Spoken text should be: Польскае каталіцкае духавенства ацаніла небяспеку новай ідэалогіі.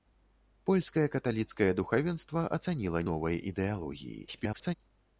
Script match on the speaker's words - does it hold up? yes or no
no